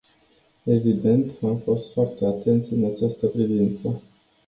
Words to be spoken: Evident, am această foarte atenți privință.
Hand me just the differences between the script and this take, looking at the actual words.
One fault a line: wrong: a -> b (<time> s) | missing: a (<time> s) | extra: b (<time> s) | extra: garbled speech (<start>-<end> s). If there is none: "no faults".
wrong: această -> fost (1.6 s)
extra: în această (2.7 s)